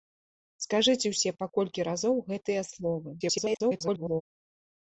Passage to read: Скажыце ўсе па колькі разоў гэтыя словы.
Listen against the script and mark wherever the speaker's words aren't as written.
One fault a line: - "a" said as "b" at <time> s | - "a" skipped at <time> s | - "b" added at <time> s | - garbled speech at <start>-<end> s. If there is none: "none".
- garbled speech at 3.2-4.2 s